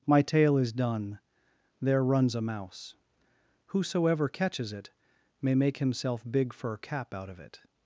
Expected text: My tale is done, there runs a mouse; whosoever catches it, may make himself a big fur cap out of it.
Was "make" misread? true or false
false